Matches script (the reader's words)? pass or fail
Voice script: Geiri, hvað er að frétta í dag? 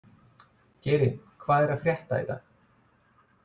pass